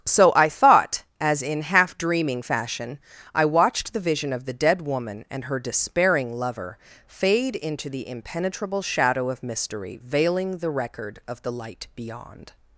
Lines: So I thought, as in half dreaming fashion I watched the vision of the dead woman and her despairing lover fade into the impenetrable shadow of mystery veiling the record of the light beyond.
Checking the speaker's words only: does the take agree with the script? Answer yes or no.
yes